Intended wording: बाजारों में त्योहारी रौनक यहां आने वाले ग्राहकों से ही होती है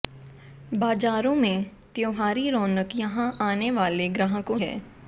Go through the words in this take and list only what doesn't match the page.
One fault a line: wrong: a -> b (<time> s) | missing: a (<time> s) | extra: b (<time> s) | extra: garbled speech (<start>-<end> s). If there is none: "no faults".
missing: से ही होती (4.6 s)